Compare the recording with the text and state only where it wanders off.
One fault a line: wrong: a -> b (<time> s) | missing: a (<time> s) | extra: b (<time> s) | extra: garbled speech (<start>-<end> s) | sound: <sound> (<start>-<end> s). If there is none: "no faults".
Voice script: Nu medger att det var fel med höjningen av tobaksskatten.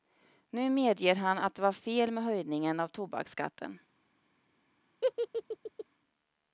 extra: han (1.1 s)
sound: laugh (5.0-5.8 s)